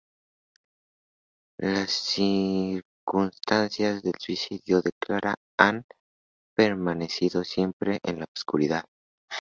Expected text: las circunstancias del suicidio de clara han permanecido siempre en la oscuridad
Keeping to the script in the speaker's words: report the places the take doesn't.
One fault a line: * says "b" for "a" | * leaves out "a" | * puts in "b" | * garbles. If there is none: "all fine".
all fine